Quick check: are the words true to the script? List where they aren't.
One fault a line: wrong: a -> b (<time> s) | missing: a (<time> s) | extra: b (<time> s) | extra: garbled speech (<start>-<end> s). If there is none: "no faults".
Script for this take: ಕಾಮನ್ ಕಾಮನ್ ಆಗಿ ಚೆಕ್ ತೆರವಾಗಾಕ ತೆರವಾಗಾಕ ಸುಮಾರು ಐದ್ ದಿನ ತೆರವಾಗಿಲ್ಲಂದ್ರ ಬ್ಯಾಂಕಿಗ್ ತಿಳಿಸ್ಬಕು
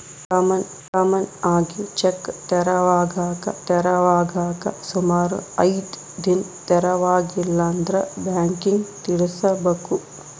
no faults